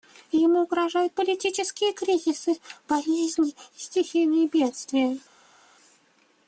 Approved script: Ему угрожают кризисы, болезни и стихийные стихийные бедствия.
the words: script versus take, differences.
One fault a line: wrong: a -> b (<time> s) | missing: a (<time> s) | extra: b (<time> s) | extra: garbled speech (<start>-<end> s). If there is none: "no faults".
extra: политические (1.1 s)
missing: стихийные (4.5 s)